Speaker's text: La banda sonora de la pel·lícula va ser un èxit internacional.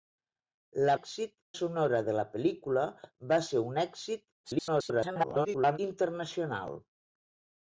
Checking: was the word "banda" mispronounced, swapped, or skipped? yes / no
yes